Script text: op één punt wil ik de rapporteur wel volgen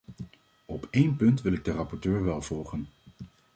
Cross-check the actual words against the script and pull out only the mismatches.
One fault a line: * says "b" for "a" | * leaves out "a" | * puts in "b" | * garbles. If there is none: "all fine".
all fine